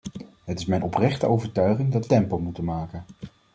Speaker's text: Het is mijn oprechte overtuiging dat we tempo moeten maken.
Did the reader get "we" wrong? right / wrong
wrong